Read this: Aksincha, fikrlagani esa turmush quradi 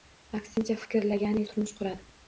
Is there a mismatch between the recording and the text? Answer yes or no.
yes